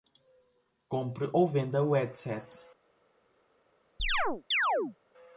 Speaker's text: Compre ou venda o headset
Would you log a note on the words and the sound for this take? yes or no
yes